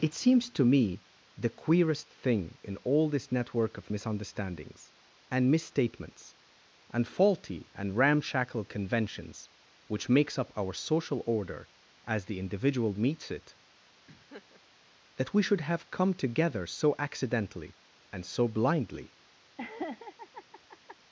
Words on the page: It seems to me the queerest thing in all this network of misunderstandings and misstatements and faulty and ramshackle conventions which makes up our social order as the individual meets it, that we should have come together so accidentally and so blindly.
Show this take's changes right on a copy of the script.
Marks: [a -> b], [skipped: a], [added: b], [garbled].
It seems to me the queerest thing in all this network of misunderstandings and misstatements and faulty and ramshackle conventions which makes up our social order as the individual meets it, that we should have come together so accidentally and so blindly.